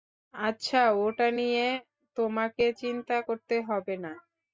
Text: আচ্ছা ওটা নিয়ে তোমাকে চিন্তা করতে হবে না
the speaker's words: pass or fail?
pass